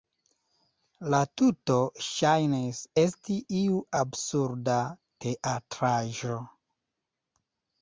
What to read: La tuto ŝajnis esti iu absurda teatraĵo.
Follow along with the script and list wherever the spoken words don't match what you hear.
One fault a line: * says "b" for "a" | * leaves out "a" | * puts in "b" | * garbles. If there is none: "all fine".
all fine